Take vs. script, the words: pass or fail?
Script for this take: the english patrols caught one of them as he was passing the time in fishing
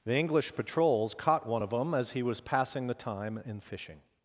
pass